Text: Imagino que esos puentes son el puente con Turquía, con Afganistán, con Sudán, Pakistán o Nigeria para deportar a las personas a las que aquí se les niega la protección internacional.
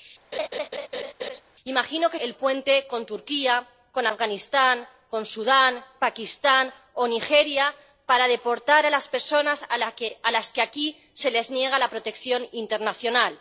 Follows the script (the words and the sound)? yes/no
no